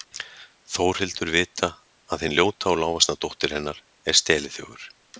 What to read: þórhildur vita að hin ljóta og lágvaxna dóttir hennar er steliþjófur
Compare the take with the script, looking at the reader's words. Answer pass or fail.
pass